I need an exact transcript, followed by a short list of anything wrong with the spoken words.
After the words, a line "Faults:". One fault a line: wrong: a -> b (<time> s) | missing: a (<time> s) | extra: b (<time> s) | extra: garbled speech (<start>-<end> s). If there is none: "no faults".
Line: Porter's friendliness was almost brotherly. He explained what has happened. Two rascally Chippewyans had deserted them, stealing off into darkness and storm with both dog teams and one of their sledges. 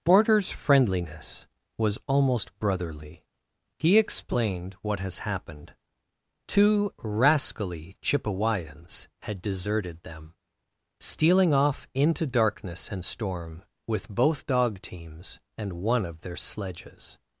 Porter's friendliness was almost brotherly. He explained what has happened. Two rascally Chippewyans had deserted them, stealing off into darkness and storm with both dog teams and one of their sledges.
Faults:
no faults